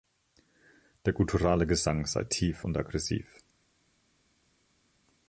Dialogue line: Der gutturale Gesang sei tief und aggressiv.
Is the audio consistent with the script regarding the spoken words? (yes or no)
yes